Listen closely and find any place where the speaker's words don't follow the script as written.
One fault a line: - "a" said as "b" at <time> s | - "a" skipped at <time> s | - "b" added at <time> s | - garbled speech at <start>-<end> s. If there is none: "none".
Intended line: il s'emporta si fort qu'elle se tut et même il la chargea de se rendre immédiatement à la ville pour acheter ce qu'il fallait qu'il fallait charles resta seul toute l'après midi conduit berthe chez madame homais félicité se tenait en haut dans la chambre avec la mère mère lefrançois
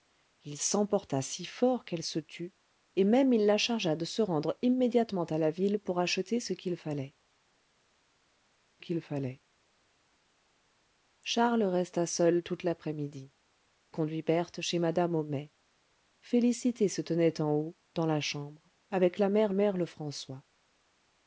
none